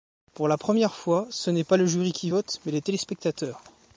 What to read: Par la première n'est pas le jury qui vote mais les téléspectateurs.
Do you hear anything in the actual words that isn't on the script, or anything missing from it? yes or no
yes